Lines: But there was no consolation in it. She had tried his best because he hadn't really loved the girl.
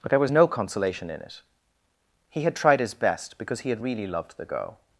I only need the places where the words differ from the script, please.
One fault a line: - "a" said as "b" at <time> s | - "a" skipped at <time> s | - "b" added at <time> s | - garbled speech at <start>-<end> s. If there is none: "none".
- "She" said as "He" at 2.3 s
- "hadn't" said as "had" at 3.7 s